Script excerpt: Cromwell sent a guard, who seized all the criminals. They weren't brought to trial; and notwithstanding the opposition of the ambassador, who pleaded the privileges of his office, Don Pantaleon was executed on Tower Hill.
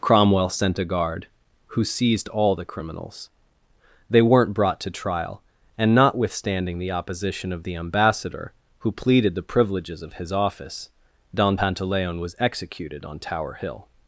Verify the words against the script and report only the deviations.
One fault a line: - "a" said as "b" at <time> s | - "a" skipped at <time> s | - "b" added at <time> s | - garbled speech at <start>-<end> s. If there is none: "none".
none